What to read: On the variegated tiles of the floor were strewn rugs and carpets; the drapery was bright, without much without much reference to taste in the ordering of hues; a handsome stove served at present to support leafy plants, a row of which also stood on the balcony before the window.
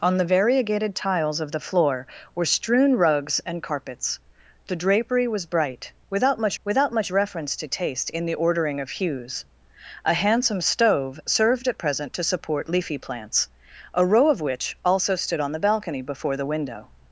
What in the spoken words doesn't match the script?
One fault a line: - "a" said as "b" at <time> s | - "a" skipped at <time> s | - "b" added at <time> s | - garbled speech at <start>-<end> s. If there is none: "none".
none